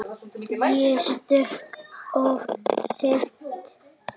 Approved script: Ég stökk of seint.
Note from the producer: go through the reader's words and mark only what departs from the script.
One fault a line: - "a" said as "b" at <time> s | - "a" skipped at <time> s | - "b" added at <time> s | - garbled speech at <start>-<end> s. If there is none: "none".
none